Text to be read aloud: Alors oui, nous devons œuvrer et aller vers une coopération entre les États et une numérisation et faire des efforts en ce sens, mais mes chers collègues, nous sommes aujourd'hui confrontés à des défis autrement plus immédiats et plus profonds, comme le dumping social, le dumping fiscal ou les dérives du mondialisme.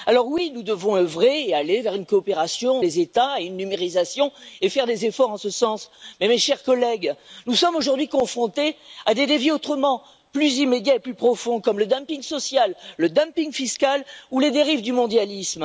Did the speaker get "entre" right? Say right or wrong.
wrong